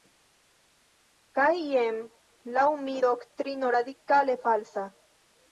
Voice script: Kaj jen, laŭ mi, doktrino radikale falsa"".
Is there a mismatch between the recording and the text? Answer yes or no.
no